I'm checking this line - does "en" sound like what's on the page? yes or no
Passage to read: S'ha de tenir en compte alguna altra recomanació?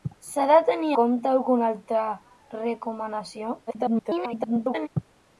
no